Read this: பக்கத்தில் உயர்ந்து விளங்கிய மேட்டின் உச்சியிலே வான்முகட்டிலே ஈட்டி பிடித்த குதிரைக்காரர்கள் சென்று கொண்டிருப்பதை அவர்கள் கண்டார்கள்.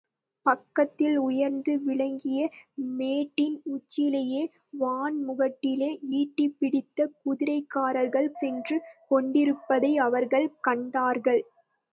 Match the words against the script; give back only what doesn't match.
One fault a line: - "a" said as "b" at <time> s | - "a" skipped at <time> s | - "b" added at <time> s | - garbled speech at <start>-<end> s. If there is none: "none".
none